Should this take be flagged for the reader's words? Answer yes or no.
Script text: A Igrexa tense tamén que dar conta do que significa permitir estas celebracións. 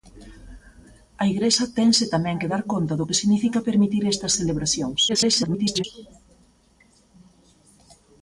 yes